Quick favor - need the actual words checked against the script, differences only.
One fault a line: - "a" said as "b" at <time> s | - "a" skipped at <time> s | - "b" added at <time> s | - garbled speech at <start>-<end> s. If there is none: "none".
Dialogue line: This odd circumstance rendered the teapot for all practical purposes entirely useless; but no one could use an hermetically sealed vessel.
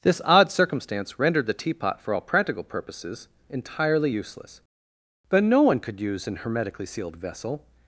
none